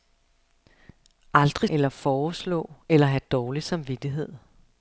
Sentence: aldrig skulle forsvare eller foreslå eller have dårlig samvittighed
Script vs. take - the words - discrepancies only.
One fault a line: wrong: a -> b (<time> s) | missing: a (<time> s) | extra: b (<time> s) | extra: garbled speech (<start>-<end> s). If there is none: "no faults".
missing: skulle forsvare (1.7 s)